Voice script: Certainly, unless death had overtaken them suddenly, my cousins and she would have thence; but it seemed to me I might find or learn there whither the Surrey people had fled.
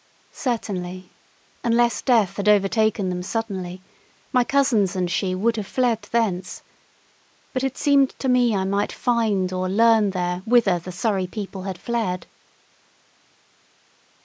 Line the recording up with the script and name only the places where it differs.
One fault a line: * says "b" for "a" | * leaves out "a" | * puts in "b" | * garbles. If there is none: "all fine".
* puts in "fled"